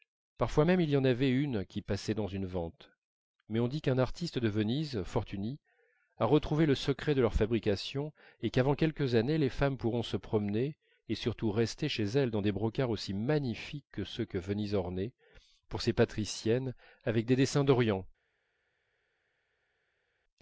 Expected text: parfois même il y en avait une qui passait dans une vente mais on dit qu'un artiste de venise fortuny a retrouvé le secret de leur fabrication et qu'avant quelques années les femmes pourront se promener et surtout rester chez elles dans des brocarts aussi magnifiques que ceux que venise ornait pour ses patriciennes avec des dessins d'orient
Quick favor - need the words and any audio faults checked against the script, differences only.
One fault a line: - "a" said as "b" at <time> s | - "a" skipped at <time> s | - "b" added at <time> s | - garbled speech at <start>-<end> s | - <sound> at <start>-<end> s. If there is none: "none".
none